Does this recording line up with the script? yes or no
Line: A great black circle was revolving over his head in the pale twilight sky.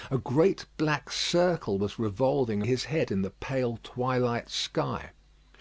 no